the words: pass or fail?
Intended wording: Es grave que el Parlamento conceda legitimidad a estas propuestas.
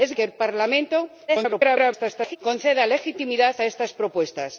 fail